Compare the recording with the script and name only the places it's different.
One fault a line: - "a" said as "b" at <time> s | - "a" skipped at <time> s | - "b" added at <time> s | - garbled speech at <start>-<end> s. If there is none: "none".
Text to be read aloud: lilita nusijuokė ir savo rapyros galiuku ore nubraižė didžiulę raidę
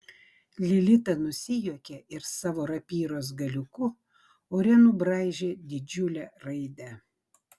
none